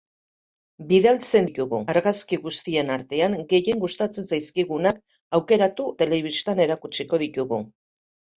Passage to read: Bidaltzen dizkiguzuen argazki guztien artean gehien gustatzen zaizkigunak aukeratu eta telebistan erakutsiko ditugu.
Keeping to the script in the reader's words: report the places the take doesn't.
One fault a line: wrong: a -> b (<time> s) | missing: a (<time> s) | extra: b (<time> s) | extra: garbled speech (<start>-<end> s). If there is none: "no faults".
wrong: dizkiguzuen -> ditugu (1.5 s)
missing: eta (5.9 s)